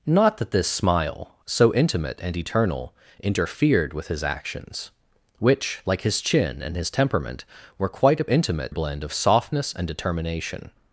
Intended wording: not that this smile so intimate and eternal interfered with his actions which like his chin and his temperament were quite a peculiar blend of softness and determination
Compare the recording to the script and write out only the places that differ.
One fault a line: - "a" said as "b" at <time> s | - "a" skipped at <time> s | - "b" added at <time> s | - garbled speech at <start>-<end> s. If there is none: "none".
- "peculiar" said as "intimate" at 8.3 s